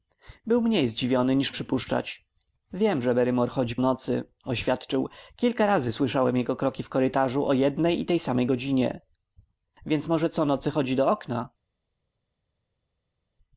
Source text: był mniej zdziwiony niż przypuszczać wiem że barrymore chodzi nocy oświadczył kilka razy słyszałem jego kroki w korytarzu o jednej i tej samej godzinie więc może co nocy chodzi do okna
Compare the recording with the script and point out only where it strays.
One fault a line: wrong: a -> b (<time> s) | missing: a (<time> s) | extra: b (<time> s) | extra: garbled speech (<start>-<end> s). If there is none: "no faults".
no faults